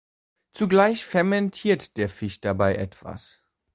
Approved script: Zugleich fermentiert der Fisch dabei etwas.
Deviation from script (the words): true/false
false